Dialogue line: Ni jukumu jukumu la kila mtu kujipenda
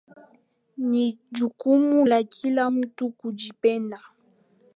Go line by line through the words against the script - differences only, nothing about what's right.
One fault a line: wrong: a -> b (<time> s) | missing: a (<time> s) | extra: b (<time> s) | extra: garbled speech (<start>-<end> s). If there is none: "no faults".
missing: jukumu (2.0 s)